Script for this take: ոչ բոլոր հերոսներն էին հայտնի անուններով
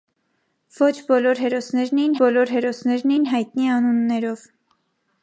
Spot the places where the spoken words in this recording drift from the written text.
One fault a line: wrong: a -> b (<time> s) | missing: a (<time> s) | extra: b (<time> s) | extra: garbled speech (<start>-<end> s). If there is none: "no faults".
extra: բոլոր հերոսներն էին (2.2 s)